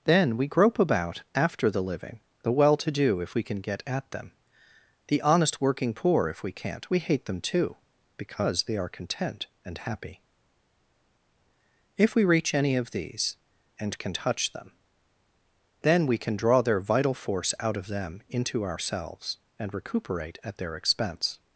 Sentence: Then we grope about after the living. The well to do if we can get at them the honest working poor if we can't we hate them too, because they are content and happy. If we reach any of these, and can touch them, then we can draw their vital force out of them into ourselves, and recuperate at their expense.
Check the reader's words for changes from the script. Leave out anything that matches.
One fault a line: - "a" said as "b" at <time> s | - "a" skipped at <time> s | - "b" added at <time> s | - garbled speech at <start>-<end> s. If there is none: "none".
none